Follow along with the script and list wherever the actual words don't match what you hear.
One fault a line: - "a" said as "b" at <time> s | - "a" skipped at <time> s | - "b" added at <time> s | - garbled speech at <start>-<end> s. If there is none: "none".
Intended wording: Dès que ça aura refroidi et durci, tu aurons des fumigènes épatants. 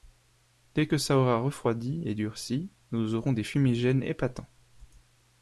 - "tu" said as "nous" at 2.9 s